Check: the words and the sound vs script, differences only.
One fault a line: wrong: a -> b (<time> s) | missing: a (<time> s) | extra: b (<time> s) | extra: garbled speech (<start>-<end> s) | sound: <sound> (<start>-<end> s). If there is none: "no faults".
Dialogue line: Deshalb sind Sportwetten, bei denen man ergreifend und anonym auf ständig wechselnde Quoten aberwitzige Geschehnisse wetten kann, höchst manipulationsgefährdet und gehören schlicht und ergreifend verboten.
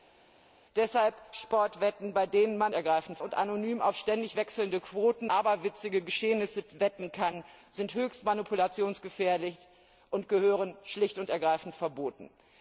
no faults